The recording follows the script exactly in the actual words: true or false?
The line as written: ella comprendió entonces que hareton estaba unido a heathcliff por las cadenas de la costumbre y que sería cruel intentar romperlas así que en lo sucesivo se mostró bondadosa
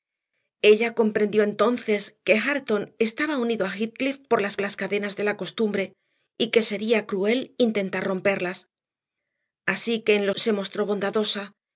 false